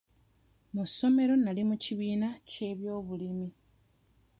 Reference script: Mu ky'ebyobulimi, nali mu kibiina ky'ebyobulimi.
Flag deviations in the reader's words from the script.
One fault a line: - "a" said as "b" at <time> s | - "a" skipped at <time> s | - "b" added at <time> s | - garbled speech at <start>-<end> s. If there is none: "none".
- "ky'ebyobulimi" said as "ssomero" at 0.9 s